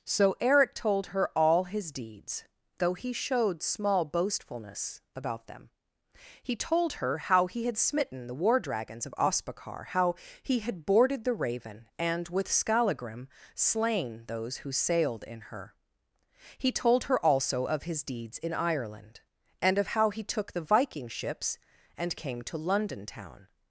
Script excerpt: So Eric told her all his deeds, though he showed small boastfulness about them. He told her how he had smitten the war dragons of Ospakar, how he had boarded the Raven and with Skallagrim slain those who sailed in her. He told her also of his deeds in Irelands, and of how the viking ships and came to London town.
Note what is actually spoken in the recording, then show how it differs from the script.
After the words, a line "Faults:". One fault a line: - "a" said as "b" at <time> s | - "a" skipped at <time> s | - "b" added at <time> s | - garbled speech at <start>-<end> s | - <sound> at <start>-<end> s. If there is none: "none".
So Eric told her all his deeds, though he showed small boastfulness about them. He told her how he had smitten the war dragons of Ospakar, how he had boarded the Raven and with Skallagrim slain those who sailed in her. He told her also of his deeds in Ireland, and of how he took the viking ships and came to London town.
Faults:
- "Irelands" said as "Ireland" at 18.5 s
- "he took" added at 20.1 s